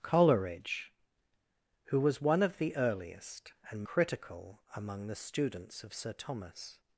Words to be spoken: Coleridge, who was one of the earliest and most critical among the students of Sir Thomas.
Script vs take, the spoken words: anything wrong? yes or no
yes